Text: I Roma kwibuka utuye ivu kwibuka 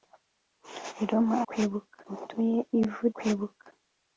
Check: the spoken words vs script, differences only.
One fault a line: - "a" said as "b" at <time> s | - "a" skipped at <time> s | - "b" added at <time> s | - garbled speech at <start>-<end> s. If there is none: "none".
none